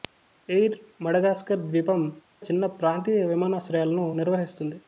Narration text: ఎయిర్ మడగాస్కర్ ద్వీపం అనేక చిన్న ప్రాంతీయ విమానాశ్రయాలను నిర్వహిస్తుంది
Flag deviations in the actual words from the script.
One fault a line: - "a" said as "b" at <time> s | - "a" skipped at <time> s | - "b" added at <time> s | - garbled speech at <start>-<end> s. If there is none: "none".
- "అనేక" skipped at 2.0 s